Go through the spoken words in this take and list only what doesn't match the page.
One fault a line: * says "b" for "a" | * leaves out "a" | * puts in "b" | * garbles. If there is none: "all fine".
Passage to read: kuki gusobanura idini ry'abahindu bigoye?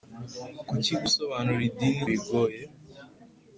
* leaves out "ry'abahindu"